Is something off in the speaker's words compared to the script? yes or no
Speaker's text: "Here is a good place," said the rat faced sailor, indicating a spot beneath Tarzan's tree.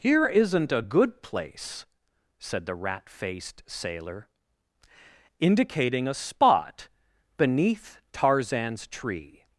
yes